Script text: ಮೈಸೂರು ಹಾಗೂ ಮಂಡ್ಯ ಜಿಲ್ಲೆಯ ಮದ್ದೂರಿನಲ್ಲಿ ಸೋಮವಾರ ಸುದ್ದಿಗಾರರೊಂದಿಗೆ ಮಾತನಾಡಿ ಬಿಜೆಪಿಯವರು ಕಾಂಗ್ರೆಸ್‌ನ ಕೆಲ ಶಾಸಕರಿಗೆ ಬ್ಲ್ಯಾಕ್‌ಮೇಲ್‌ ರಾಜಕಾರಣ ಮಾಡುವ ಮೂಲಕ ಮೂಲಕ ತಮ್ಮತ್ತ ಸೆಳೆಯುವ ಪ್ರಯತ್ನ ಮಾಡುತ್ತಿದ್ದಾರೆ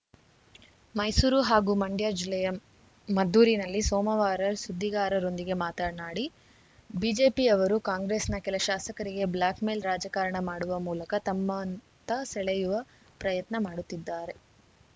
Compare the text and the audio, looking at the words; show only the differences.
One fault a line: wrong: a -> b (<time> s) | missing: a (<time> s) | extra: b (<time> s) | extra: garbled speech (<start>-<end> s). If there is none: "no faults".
missing: ಮೂಲಕ (11.1 s)